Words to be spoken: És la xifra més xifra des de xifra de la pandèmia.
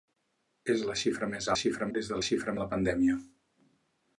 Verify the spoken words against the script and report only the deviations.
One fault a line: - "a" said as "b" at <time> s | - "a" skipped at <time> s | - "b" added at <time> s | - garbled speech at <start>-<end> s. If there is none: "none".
none